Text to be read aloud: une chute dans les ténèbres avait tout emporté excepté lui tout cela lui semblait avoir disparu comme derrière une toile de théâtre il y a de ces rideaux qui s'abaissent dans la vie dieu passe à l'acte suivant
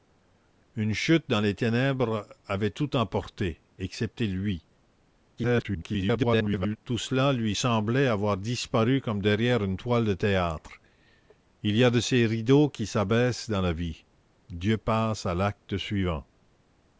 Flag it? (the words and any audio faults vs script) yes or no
yes